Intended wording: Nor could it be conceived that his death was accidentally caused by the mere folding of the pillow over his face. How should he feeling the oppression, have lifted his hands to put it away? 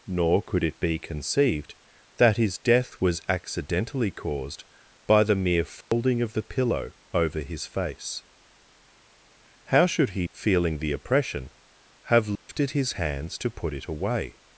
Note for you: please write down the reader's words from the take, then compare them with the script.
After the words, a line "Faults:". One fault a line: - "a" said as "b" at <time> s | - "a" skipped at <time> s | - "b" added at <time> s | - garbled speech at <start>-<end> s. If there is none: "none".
Nor could it be conceived that his death was accidentally caused by the mere folding of the pillow over his face. How should he feeling the oppression, have lifted his hands to put it away?
Faults:
none